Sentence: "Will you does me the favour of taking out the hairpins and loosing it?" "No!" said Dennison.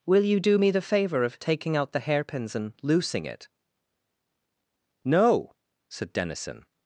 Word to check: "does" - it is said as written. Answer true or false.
false